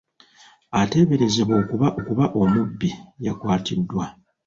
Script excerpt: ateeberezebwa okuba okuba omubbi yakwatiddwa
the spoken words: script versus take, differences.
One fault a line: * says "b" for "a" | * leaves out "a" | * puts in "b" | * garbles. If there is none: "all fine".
all fine